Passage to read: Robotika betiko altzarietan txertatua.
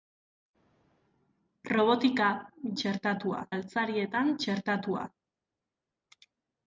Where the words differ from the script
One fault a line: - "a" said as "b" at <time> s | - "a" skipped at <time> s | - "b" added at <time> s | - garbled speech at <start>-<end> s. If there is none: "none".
- "betiko" said as "txertatua" at 2.8 s